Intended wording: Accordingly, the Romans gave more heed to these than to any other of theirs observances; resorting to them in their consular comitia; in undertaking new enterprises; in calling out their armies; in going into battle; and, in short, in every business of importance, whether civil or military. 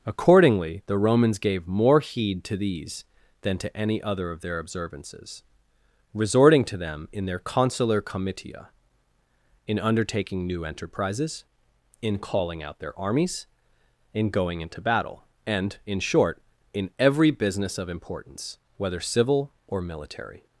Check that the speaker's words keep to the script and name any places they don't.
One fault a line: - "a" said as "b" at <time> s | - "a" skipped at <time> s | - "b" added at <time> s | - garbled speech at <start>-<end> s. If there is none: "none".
- "theirs" said as "their" at 4.4 s